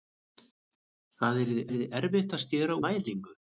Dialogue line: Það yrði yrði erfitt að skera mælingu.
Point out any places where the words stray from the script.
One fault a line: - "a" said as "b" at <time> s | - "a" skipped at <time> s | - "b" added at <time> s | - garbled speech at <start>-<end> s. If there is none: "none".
none